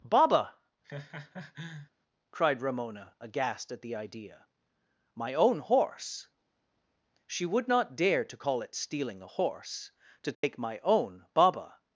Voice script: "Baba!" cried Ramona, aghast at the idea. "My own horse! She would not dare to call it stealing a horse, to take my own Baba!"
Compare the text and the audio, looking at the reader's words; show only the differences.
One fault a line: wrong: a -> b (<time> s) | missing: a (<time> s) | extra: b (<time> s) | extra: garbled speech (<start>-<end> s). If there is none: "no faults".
no faults